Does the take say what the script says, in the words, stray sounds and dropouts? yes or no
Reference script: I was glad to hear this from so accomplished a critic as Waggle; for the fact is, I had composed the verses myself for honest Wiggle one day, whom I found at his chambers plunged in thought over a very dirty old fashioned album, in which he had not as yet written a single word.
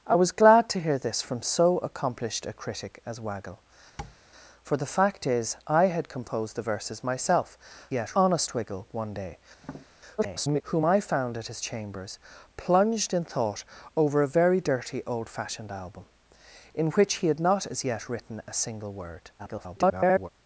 no